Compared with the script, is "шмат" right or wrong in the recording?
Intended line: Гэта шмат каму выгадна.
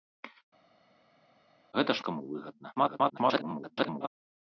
wrong